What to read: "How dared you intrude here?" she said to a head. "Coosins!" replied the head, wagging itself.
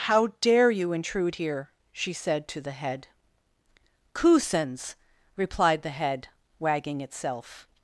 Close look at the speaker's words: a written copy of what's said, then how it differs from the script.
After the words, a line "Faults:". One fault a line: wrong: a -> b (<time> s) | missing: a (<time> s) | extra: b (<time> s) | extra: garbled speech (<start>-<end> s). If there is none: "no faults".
"How dare you intrude here?" she said to the head. "Coosins!" replied the head, wagging itself.
Faults:
wrong: dared -> dare (0.4 s)
wrong: a -> the (2.6 s)